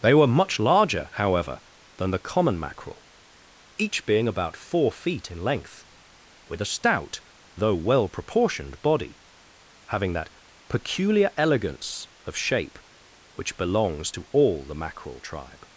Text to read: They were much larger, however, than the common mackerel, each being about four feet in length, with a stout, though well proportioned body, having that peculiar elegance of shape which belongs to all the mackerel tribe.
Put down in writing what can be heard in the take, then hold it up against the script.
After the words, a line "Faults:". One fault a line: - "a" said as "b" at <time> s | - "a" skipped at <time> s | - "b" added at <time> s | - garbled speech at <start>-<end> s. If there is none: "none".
They were much larger, however, than the common mackerel, each being about four feet in length, with a stout, though well proportioned body, having that peculiar elegance of shape which belongs to all the mackerel tribe.
Faults:
none